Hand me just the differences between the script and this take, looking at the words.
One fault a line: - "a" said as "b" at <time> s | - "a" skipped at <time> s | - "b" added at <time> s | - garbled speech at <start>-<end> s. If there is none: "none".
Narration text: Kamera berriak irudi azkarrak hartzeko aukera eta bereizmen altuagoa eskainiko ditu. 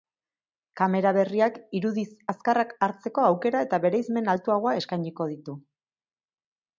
none